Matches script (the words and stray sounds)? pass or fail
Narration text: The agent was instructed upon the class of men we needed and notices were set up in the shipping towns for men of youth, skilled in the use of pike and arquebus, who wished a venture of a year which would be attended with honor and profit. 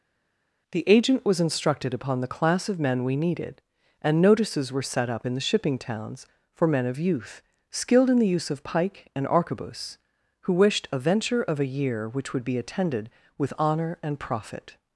pass